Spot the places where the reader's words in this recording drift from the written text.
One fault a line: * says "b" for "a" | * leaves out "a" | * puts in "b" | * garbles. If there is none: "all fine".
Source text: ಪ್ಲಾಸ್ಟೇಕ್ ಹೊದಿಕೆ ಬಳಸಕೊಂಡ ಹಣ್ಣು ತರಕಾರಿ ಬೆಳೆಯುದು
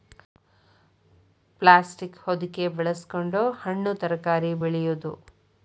all fine